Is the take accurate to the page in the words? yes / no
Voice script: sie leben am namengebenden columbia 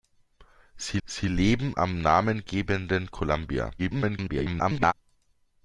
no